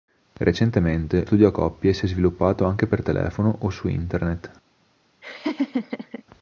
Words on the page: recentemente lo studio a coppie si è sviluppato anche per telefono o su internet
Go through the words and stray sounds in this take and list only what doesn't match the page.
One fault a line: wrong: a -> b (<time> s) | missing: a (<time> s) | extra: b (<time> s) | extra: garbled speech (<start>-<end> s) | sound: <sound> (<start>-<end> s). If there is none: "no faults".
missing: lo (1.2 s)
sound: laugh (5.2-6.2 s)